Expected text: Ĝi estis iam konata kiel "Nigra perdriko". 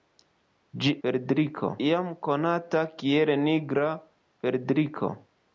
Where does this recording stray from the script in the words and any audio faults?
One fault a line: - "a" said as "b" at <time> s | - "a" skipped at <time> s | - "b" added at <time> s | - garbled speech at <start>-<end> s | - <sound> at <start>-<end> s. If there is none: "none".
- "estis" said as "perdriko" at 1.1 s